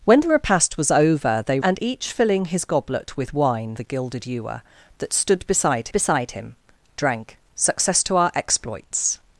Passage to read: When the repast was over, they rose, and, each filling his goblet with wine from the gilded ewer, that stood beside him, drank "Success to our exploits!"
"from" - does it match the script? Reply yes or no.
no